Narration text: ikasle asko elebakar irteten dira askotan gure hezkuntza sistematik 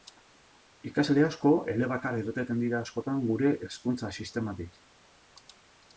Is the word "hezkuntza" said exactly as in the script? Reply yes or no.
yes